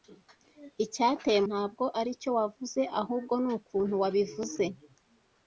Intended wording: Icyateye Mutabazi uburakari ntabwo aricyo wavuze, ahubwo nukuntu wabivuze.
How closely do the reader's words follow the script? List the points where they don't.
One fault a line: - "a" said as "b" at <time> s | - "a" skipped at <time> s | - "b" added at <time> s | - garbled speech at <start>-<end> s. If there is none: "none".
- "Mutabazi uburakari" skipped at 1.4 s